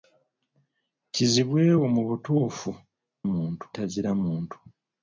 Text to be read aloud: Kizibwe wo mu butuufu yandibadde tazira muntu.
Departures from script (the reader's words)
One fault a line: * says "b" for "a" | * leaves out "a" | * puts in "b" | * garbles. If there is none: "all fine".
* says "muntu" for "yandibadde"